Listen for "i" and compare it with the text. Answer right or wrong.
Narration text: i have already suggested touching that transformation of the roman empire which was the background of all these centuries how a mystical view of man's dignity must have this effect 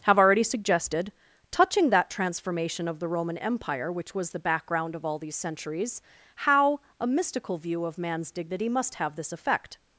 wrong